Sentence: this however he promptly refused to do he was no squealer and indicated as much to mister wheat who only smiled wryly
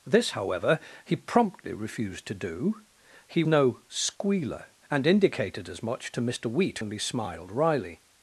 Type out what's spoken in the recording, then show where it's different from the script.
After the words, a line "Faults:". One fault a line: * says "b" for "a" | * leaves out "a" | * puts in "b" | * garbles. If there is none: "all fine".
this however he promptly refused to do he no squealer and indicated as much to mister wheat only smiled wryly
Faults:
* leaves out "was"
* leaves out "who"